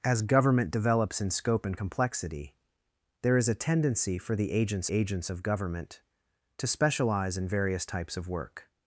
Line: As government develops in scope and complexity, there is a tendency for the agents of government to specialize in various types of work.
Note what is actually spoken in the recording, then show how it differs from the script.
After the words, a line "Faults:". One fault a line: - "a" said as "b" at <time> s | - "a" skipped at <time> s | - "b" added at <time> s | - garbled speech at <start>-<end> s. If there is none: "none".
As government develops in scope and complexity, there is a tendency for the agents agents of government to specialize in various types of work.
Faults:
- "agents" added at 4.9 s